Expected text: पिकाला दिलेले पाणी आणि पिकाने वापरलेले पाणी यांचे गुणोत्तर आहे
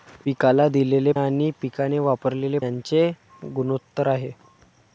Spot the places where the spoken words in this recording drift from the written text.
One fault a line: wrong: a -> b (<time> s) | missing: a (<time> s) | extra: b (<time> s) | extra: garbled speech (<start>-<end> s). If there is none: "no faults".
missing: पाणी (1.1 s)
missing: पाणी (2.6 s)